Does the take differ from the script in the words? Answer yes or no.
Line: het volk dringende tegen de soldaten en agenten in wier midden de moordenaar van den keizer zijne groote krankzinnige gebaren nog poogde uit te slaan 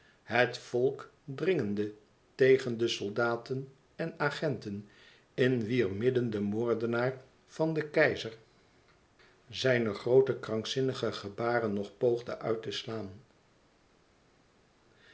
no